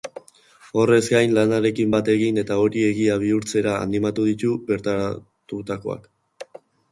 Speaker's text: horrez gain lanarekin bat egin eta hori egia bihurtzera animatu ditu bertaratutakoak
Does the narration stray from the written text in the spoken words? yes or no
no